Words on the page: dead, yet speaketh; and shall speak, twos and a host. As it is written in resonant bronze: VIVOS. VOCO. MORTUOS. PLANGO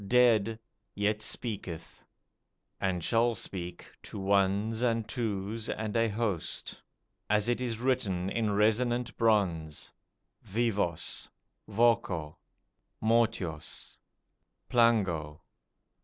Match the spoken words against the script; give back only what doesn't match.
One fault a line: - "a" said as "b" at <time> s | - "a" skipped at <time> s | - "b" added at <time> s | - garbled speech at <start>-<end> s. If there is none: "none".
- "to ones and" added at 4.0 s